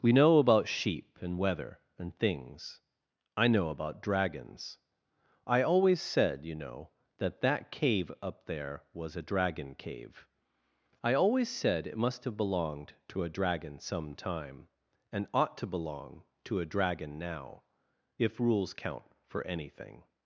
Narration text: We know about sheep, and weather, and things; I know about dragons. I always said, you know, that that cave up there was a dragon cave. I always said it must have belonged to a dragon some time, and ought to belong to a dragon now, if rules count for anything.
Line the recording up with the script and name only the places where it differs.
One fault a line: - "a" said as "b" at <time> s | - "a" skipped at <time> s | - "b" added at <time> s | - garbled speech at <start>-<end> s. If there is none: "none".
none